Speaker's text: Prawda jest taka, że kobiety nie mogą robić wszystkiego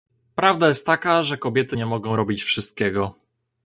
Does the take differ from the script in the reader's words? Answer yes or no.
no